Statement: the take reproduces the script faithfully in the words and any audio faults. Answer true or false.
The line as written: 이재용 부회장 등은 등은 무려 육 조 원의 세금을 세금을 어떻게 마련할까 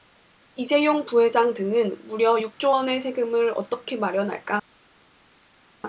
false